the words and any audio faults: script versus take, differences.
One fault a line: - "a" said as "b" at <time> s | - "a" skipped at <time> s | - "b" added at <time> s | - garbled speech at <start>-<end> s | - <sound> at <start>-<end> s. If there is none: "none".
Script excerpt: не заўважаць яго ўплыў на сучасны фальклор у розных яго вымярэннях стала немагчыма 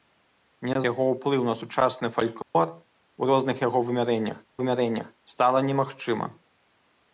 - "заўважаць" skipped at 0.8 s
- dropout at 2.4-2.5 s
- "вымярэннях" added at 4.6 s